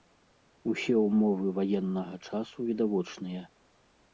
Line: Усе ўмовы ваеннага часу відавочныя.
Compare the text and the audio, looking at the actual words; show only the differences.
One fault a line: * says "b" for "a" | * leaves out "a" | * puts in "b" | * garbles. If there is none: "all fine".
all fine